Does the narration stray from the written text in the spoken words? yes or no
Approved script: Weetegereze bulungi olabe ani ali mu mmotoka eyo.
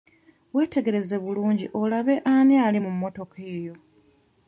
no